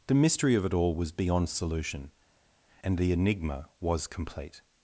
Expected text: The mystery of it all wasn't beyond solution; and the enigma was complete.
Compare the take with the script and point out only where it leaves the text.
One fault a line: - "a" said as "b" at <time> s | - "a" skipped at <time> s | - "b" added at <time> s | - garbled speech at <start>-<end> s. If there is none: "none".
- "wasn't" said as "was" at 0.9 s